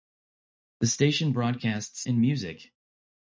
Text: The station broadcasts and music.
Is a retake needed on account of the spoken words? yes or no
no